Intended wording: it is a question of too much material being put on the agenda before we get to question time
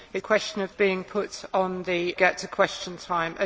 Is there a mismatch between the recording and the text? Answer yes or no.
yes